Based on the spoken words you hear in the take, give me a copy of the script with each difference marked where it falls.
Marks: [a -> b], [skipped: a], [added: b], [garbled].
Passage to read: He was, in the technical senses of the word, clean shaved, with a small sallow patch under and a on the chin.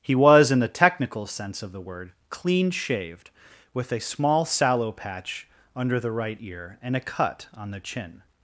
He was, in the technical [senses -> sense] of the word, clean shaved, with a small sallow patch under [added: the right ear] and a [added: cut] on the chin.